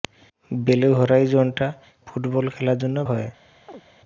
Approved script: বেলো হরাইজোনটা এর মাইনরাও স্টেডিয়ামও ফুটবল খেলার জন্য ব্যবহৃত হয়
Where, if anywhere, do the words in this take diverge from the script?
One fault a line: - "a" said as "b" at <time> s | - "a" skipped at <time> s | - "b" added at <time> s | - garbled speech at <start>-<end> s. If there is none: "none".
- "এর মাইনরাও স্টেডিয়ামও" skipped at 1.7 s
- "ব্যবহৃত" skipped at 3.0 s